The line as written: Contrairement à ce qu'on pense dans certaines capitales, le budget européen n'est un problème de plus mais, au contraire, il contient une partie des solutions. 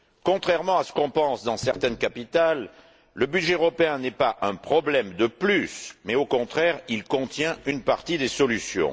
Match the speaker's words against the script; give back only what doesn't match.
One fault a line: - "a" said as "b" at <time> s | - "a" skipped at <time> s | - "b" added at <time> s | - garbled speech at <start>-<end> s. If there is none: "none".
- "pas" added at 4.1 s